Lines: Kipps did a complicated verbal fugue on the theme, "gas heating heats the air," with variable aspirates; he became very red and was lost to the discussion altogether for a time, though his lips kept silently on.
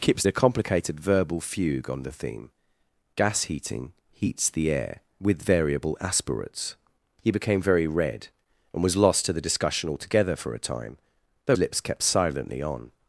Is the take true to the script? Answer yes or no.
no